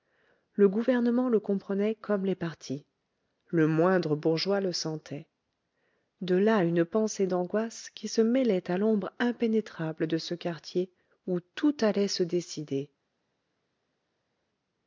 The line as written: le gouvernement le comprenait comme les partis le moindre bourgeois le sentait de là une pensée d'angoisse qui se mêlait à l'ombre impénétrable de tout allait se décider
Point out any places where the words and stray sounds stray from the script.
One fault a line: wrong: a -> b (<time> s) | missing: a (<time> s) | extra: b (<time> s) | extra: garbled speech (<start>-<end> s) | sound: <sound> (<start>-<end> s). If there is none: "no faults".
extra: ce quartier où (10.2 s)